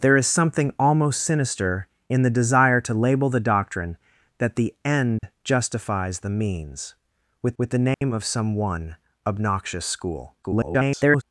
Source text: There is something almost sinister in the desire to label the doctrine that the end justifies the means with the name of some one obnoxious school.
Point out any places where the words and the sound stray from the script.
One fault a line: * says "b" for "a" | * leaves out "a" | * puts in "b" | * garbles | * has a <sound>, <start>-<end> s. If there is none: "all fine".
* has a dropout, 5.2-5.2 s
* puts in "with"
* has a dropout, 7.9-8.0 s
* garbles